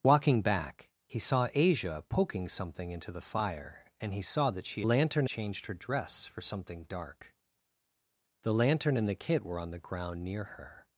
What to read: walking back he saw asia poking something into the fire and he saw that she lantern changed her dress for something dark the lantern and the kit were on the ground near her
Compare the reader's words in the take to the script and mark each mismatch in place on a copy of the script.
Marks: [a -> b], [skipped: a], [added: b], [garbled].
walking back he saw asia poking something into the fire and he saw that she lantern changed her dress for something dark the lantern and the kit were on the ground near her